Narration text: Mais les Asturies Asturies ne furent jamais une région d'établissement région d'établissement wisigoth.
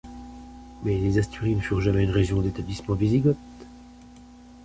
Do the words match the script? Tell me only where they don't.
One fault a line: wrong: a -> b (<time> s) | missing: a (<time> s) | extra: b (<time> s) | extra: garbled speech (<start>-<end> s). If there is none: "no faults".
missing: Asturies (1.6 s)
missing: région d'établissement (3.0 s)